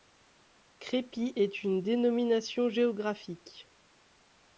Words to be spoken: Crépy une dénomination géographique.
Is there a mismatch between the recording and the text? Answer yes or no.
yes